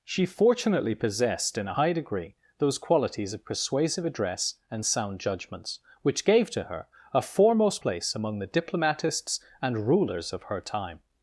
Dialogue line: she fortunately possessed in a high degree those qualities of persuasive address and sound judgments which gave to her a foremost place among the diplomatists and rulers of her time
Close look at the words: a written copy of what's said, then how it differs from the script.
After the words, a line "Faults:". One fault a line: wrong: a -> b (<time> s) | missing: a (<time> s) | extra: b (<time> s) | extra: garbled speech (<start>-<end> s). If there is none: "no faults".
she fortunately possessed in a high degree those qualities of persuasive address and sound judgments which gave to her a foremost place among the diplomatists and rulers of her time
Faults:
no faults